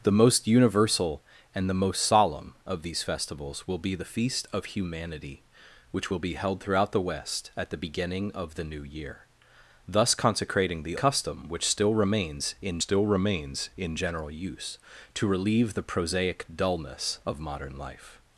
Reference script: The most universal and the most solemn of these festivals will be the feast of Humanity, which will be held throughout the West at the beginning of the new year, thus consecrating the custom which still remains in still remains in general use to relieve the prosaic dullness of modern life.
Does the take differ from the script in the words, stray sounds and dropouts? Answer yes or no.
no